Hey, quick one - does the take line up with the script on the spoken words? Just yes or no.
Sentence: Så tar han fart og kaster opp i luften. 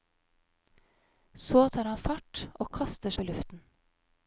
yes